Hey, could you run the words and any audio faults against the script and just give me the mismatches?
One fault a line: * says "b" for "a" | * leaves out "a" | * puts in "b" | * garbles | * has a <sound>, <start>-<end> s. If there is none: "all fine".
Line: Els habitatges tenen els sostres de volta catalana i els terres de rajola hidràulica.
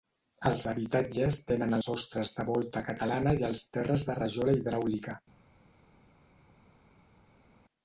* leaves out "els"